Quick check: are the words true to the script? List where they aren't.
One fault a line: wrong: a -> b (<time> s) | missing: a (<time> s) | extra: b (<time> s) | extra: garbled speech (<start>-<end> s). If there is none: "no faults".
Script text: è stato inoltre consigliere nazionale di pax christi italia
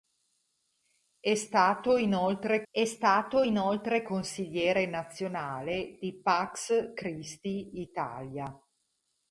extra: è stato inoltre (2.7 s)